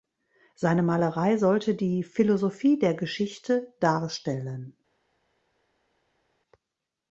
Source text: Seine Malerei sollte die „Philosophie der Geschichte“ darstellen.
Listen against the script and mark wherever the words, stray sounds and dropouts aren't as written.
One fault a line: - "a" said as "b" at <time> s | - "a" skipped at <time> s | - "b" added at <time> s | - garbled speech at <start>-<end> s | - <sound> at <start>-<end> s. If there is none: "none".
none